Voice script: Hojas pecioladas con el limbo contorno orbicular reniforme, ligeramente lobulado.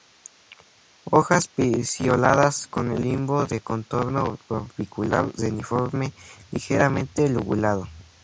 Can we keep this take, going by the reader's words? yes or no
no